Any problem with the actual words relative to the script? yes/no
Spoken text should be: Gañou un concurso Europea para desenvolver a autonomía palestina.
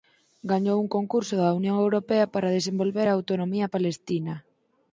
yes